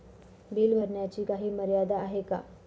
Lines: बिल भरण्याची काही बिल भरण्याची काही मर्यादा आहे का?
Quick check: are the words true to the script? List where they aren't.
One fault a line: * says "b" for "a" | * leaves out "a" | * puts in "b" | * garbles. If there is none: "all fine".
* leaves out "बिल भरण्याची काही"